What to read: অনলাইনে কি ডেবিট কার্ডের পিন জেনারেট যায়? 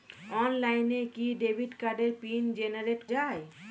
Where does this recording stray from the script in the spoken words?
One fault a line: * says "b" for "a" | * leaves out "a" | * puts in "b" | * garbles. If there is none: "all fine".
all fine